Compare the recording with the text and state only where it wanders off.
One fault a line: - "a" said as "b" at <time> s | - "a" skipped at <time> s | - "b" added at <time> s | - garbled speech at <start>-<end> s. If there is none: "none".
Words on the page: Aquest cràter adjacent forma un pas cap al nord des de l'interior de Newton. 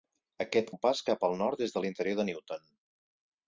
- "cràter adjacent forma" skipped at 0.7 s